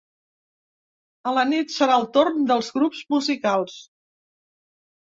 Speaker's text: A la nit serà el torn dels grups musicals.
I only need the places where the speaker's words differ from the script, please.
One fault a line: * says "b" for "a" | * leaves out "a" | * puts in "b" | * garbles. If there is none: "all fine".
all fine